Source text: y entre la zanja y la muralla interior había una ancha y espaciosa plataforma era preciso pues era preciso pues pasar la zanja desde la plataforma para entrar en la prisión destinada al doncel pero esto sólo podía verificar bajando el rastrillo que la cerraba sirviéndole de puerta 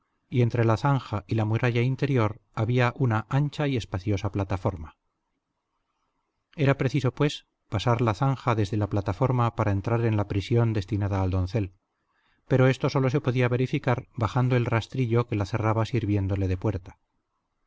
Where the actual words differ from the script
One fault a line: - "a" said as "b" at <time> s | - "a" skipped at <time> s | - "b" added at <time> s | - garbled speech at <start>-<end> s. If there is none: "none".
- "era preciso pues" skipped at 7.5 s
- "se" added at 13.1 s